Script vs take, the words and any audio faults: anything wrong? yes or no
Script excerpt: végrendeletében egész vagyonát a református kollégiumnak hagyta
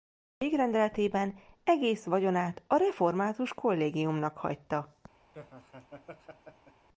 yes